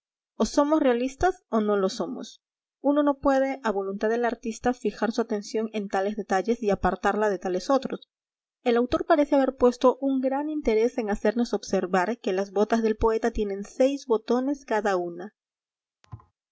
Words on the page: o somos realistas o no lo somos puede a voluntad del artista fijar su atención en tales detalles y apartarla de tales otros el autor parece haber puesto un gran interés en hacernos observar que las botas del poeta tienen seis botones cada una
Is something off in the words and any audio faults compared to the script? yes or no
yes